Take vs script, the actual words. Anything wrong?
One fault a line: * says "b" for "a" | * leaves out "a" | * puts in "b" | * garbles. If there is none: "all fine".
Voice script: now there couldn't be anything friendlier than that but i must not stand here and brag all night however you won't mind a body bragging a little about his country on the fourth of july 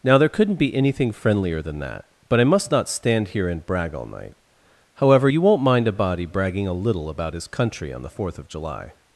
all fine